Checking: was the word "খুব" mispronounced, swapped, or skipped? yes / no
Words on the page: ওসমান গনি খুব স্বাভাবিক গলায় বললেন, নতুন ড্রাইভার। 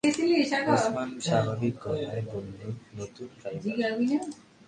yes